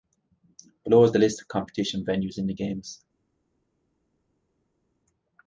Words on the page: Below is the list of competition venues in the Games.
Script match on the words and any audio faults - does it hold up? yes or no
yes